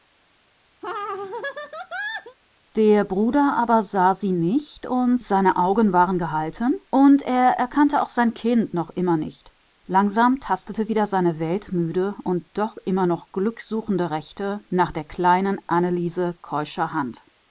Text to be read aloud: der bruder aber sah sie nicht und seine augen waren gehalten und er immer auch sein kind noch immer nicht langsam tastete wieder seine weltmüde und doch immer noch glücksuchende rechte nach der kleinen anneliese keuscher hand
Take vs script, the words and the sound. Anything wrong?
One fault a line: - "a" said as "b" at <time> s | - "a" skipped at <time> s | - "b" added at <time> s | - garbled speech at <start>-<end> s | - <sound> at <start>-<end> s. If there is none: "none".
- laugh at 0.8-2.4 s
- "immer" said as "erkannte" at 7.5 s